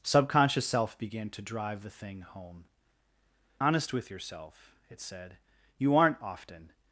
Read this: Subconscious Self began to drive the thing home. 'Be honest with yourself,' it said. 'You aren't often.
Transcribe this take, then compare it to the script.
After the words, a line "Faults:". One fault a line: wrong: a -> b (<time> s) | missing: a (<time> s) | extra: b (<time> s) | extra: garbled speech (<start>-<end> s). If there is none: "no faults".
Subconscious Self began to drive the thing home. 'Honest with yourself,' it said. 'You aren't often.
Faults:
missing: Be (2.6 s)